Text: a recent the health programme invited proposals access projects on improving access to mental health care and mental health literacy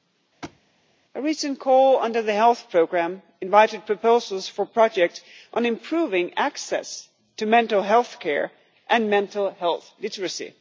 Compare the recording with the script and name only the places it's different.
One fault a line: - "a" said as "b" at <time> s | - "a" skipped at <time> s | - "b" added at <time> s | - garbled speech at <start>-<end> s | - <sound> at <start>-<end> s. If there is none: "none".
- thud at 0.4-0.6 s
- "call under" added at 1.6 s
- "access" said as "for" at 4.5 s